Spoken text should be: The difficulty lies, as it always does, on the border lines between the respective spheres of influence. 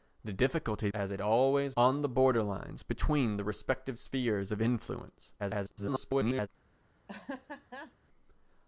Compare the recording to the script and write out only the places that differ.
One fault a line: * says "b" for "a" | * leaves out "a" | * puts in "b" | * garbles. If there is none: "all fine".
* leaves out "lies"
* leaves out "does"
* garbles